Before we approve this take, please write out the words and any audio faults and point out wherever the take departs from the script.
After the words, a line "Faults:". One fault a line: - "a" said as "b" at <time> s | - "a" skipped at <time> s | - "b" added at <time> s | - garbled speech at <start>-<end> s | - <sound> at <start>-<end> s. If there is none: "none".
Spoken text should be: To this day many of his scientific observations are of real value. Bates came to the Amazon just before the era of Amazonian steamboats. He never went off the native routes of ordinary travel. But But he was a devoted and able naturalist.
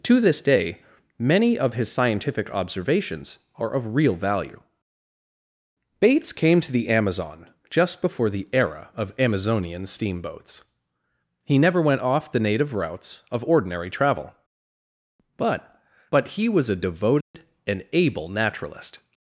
To this day many of his scientific observations are of real value. Bates came to the Amazon just before the era of Amazonian steamboats. He never went off the native routes of ordinary travel. But But he was a devoted and able naturalist.
Faults:
- dropout at 17.2-17.3 s